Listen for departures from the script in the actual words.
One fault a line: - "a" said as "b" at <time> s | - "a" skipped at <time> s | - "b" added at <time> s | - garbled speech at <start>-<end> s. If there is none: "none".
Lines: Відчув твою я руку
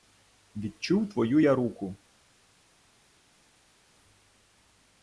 none